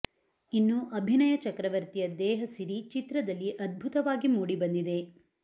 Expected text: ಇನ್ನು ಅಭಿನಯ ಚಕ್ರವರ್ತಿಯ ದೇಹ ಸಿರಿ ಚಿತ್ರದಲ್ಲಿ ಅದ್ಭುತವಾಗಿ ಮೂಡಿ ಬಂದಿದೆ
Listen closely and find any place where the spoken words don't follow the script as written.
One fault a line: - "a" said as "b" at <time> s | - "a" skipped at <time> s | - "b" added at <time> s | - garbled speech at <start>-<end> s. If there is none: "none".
none